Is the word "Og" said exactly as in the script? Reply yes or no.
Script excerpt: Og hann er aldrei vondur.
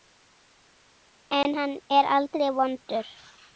no